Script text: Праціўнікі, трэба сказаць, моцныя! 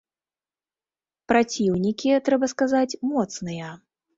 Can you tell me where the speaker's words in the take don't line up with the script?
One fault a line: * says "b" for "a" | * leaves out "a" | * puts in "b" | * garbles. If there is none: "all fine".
all fine